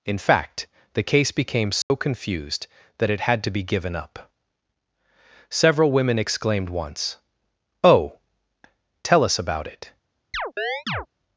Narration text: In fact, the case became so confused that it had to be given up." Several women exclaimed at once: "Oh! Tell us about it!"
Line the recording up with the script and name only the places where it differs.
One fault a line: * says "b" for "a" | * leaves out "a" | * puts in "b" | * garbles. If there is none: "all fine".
* leaves out "at"